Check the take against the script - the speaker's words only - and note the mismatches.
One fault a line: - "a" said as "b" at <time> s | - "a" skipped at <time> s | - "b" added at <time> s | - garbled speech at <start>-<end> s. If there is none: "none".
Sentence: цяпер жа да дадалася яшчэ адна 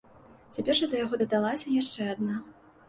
- "яго" added at 1.0 s